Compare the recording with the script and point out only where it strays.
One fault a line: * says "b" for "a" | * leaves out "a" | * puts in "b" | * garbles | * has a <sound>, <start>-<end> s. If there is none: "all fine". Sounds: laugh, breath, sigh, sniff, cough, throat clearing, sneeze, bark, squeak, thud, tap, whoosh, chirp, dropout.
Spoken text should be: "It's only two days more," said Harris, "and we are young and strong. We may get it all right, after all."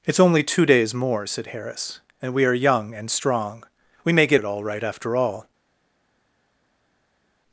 all fine